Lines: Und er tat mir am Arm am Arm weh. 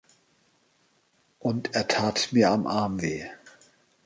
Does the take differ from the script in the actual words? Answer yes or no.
yes